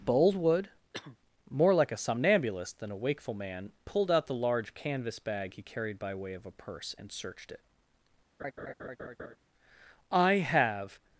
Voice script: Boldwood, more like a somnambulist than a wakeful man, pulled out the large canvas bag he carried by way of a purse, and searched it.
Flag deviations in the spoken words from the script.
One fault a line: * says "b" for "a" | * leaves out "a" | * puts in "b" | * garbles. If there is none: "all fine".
* puts in "I have"